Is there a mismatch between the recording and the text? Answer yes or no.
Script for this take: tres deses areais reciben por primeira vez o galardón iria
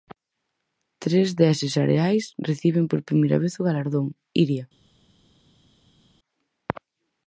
no